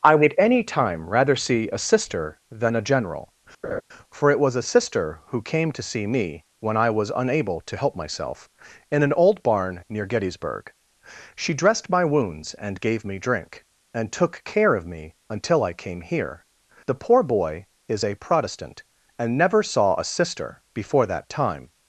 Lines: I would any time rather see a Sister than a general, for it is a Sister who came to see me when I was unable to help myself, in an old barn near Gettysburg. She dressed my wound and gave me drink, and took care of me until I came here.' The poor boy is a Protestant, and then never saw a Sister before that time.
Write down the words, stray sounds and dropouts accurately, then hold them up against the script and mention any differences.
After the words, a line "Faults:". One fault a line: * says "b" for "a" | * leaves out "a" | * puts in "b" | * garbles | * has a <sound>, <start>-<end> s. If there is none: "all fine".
I would any time rather see a Sister than a general, for it was a Sister who came to see me when I was unable to help myself, in an old barn near Gettysburg. She dressed my wounds and gave me drink, and took care of me until I came here.' The poor boy is a Protestant, and never saw a Sister before that time.
Faults:
* has a laugh, 3.6-3.8 s
* says "was" for "is"
* says "wounds" for "wound"
* leaves out "then"